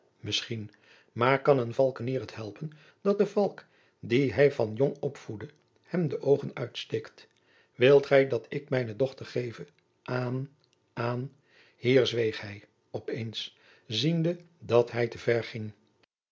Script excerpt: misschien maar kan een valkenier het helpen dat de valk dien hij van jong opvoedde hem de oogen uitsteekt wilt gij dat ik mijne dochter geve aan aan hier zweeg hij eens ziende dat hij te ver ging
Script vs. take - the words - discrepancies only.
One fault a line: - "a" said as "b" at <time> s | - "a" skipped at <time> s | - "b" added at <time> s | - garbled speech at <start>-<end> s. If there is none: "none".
- "op" added at 12.9 s